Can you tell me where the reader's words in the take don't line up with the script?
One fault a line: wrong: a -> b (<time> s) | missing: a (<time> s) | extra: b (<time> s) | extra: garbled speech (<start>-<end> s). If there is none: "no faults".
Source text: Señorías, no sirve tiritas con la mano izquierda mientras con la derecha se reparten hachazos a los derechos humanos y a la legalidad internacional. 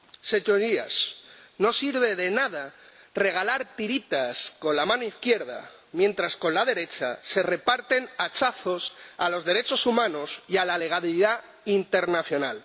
extra: de nada regalar (2.1 s)